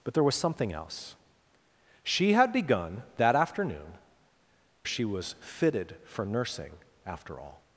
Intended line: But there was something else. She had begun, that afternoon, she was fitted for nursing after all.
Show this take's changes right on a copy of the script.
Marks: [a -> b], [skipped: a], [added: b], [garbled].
But there was something else. She had begun, that afternoon, she was fitted for nursing after all.